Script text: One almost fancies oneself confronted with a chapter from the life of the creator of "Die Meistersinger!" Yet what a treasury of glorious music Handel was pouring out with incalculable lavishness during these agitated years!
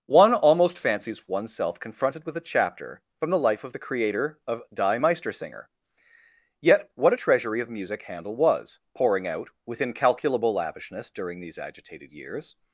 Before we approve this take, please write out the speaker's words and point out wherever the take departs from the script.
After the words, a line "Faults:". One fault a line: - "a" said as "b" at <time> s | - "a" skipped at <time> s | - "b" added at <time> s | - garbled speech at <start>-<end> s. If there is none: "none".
One almost fancies oneself confronted with a chapter from the life of the creator of "Die Meistersinger!" Yet what a treasury of music Handel was pouring out with incalculable lavishness during these agitated years!
Faults:
- "glorious" skipped at 7.7 s